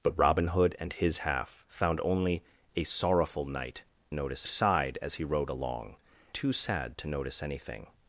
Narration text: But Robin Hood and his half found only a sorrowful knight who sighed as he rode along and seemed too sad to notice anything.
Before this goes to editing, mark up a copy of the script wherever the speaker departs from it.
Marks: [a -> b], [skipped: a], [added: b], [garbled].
But Robin Hood and his half found only a sorrowful knight [who -> notice] sighed as he rode along [skipped: and seemed] too sad to notice anything.